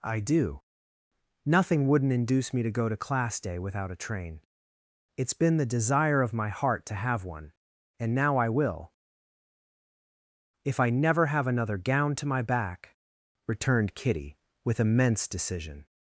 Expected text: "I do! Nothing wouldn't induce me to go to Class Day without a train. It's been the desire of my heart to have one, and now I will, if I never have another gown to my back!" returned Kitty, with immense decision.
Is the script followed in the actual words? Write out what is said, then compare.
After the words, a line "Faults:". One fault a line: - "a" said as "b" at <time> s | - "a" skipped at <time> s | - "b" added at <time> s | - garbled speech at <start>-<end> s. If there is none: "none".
"I do! Nothing wouldn't induce me to go to Class Day without a train. It's been the desire of my heart to have one, and now I will, if I never have another gown to my back!" returned Kitty, with immense decision.
Faults:
none